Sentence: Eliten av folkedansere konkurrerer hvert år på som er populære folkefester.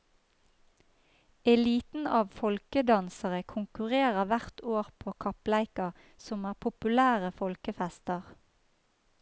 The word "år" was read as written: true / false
true